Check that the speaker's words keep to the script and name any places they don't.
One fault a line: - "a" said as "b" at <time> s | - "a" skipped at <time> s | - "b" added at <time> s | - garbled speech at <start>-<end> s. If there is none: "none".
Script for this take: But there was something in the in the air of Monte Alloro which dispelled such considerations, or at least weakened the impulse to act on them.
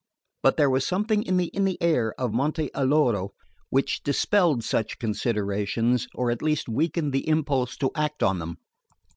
none